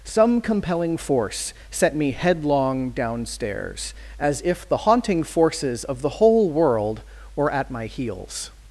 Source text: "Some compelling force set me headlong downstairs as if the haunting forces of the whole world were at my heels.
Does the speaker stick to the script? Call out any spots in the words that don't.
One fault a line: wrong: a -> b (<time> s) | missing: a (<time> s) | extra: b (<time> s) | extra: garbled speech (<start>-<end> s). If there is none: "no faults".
no faults